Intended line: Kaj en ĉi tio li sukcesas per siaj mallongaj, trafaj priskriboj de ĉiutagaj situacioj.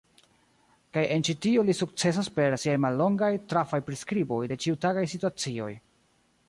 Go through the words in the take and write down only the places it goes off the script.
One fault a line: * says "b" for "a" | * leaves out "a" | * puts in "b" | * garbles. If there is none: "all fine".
all fine